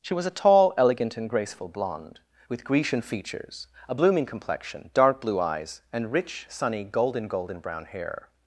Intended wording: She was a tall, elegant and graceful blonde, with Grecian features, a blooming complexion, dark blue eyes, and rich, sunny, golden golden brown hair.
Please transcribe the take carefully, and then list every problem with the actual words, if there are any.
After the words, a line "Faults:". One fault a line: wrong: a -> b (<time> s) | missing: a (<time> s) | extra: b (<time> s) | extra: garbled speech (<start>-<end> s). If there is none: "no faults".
She was a tall, elegant and graceful blonde, with Grecian features, a blooming complexion, dark blue eyes, and rich, sunny, golden golden brown hair.
Faults:
no faults